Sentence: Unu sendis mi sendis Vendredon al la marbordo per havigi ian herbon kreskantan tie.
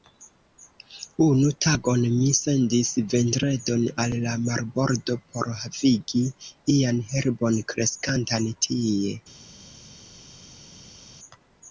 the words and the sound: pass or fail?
fail